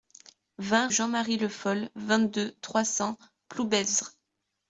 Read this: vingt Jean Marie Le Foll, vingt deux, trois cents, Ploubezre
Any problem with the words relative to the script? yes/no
no